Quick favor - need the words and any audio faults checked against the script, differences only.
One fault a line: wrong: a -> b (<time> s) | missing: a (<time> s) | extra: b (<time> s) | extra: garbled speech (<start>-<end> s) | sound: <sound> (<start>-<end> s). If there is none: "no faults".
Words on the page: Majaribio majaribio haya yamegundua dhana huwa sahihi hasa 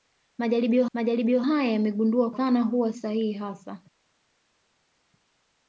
no faults